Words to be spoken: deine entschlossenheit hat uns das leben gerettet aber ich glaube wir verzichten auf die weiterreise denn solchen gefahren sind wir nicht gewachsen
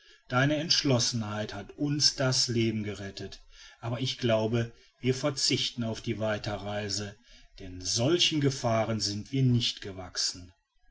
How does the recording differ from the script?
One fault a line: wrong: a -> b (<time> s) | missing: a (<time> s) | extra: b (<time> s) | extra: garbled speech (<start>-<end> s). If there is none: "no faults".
no faults